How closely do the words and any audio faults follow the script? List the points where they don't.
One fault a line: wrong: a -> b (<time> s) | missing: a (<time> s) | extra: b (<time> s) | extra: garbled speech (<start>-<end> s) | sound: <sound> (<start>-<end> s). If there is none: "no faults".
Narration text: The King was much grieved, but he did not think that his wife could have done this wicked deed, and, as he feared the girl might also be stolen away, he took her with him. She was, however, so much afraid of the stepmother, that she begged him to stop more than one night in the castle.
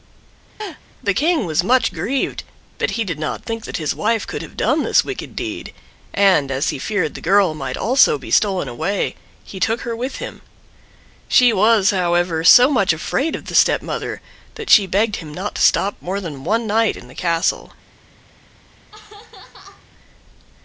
sound: laugh (0.6-0.8 s)
extra: not (15.3 s)
sound: laugh (18.7-19.9 s)